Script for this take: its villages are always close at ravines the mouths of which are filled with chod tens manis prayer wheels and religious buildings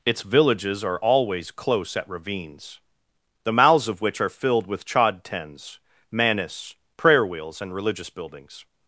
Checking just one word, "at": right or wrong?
right